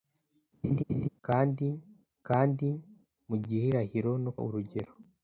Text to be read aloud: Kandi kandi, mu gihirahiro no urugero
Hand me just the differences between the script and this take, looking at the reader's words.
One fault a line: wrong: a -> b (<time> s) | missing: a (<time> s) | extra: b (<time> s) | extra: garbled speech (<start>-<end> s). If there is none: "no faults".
no faults